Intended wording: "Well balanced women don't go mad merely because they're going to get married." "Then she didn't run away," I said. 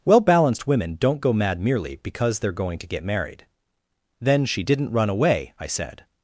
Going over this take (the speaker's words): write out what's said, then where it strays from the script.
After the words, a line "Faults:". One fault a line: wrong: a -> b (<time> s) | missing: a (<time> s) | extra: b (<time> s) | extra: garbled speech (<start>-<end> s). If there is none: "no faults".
"Well balanced women don't go mad merely because they're going to get married." "Then she didn't run away," I said.
Faults:
no faults